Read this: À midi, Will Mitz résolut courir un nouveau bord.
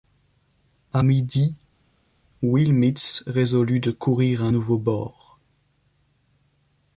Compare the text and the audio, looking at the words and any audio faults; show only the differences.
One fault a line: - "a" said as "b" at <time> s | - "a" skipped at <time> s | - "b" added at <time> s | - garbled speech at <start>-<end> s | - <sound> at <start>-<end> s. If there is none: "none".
- "de" added at 3.8 s